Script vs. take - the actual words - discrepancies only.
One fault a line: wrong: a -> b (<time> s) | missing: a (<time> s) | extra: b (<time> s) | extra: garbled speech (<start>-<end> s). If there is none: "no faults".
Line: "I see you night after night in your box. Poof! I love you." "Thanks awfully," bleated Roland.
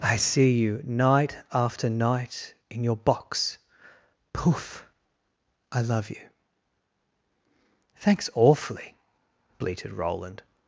no faults